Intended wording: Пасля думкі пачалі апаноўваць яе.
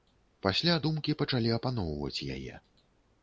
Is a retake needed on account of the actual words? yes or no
no